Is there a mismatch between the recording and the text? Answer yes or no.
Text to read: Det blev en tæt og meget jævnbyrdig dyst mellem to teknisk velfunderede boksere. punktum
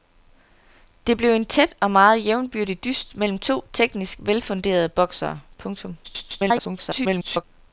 yes